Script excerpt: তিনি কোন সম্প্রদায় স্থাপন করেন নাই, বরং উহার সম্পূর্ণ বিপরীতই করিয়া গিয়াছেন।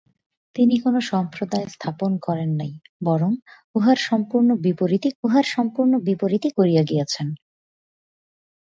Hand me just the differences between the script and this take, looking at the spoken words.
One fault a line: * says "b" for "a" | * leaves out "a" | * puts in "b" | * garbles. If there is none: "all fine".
* puts in "উহার সম্পূর্ণ বিপরীতই"